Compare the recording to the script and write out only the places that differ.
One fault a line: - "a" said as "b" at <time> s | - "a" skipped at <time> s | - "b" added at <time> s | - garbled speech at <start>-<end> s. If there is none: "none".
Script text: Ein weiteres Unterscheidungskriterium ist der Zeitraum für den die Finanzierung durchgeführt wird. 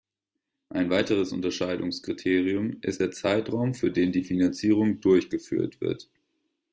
none